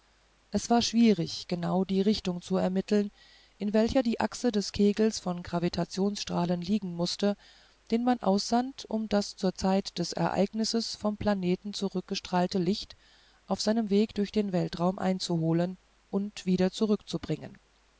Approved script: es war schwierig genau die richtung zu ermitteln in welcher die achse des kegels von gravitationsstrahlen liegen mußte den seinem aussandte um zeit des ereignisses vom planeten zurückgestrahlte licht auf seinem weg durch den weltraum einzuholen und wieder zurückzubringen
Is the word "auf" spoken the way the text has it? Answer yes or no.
yes